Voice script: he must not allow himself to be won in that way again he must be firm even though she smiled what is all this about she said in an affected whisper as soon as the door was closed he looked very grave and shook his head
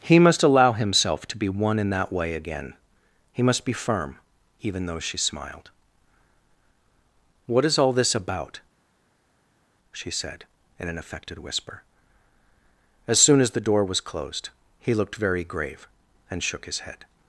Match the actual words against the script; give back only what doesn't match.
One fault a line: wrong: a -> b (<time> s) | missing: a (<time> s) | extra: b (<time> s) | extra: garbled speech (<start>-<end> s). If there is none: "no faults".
missing: not (0.4 s)